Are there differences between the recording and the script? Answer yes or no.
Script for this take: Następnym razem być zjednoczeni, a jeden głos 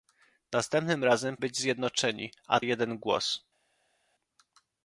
no